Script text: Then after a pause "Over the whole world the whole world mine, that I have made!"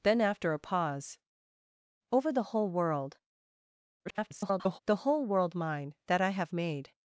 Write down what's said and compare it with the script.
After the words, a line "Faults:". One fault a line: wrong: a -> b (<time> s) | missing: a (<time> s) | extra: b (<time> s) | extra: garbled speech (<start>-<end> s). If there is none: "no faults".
Then after a pause "Over the whole world [garbled] the whole world mine, that I have made!"
Faults:
extra: garbled speech (4.1-4.8 s)